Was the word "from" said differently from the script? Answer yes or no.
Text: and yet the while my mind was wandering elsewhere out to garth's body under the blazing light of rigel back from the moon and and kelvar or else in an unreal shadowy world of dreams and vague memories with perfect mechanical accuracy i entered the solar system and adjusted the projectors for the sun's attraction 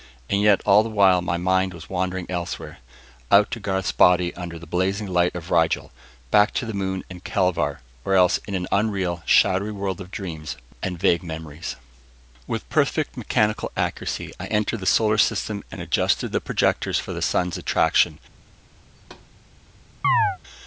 yes